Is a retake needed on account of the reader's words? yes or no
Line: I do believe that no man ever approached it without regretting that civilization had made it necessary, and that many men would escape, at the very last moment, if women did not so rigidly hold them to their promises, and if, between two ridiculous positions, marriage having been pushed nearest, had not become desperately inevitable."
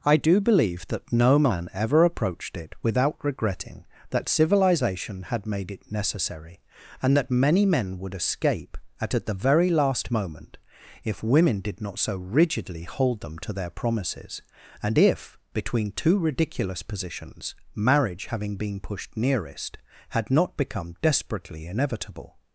yes